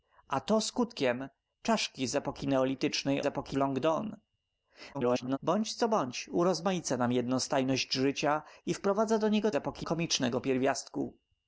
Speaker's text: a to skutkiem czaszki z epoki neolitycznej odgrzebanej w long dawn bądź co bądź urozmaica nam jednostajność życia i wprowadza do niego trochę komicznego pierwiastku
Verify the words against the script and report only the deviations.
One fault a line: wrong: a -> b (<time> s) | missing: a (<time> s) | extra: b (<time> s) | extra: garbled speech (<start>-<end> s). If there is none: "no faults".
wrong: odgrzebanej -> epoki (3.3 s)
extra: garbled speech (4.9-5.4 s)
wrong: trochę -> epoki (9.5 s)